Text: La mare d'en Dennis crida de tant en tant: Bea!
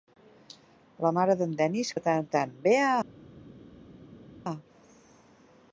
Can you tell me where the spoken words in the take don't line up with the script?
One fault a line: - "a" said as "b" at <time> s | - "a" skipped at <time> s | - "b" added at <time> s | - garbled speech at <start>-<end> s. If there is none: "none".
- "crida" skipped at 1.9 s